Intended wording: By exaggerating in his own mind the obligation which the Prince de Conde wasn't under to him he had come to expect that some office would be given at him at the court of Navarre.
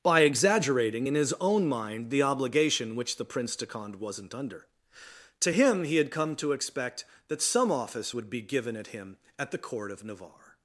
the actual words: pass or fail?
pass